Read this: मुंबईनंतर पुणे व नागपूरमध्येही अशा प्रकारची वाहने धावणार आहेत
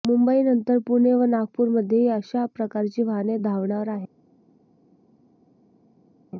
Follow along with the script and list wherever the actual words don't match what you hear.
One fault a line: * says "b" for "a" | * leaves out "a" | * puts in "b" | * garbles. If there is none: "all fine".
all fine